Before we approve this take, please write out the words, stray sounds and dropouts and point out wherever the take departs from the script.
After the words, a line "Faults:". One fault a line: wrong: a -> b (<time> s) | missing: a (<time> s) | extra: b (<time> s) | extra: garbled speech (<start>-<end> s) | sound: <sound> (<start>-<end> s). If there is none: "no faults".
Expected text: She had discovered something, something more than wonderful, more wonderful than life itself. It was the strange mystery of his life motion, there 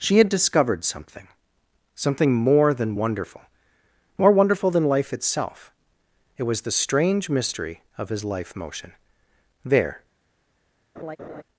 She had discovered something, something more than wonderful, more wonderful than life itself. It was the strange mystery of his life motion, there
Faults:
sound: laugh (11.0-11.4 s)